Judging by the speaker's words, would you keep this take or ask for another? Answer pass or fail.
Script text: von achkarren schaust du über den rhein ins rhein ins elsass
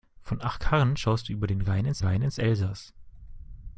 pass